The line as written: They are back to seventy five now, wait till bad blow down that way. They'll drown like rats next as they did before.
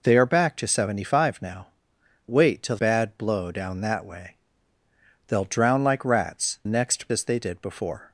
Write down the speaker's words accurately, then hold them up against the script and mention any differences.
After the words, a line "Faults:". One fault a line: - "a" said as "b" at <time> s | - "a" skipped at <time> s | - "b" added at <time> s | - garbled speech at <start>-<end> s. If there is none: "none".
They are back to seventy five now, wait till bad blow down that way. They'll drown like rats next as they did before.
Faults:
none